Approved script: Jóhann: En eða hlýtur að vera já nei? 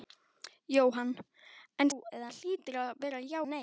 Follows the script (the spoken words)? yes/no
yes